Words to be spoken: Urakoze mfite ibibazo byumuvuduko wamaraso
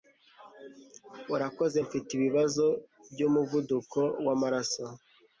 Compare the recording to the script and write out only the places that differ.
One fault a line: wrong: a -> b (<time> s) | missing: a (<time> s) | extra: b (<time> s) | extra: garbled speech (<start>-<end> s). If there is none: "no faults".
no faults